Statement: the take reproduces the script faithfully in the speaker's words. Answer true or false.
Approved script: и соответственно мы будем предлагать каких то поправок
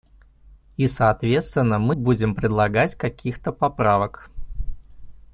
true